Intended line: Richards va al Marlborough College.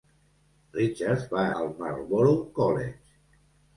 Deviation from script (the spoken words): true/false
false